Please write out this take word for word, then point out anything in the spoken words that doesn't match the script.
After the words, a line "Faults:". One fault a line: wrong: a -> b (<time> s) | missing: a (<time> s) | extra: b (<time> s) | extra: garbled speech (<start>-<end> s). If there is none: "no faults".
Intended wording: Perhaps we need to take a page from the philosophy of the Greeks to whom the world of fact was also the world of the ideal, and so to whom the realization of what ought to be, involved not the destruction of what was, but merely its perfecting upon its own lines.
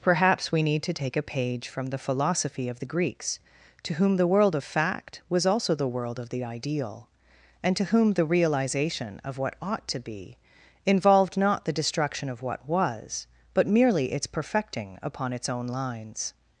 Perhaps we need to take a page from the philosophy of the Greeks to whom the world of fact was also the world of the ideal, and to whom the realization of what ought to be, involved not the destruction of what was, but merely its perfecting upon its own lines.
Faults:
missing: so (7.8 s)